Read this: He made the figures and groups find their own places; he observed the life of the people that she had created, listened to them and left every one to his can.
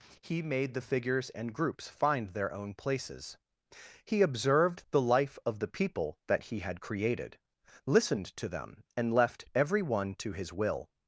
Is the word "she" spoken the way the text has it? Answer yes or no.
no